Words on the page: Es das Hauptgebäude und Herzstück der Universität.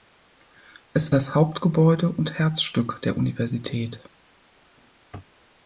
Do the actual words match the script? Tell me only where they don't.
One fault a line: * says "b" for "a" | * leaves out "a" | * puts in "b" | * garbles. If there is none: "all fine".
all fine